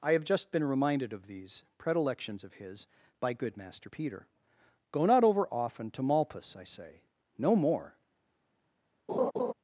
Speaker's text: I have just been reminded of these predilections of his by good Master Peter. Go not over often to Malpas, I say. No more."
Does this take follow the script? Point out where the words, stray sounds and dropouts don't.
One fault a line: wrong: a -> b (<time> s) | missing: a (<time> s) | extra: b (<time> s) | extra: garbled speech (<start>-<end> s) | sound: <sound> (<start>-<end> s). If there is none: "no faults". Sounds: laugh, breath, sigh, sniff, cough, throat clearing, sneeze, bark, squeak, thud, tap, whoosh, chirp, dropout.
sound: laugh (9.1-9.5 s)